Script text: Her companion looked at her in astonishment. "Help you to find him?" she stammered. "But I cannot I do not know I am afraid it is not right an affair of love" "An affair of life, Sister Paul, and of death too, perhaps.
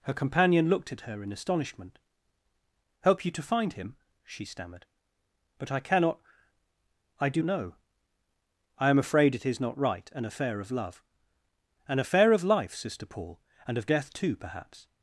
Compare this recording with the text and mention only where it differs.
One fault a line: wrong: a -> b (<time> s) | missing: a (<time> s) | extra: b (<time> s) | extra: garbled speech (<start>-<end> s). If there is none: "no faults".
missing: not (7.4 s)